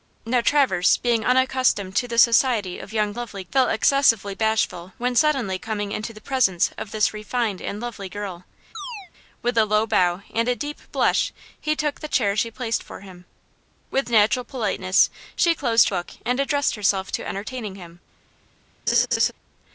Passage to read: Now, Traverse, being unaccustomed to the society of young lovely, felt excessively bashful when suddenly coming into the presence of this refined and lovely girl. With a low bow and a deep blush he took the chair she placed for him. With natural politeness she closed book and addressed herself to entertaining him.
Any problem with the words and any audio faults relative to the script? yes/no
yes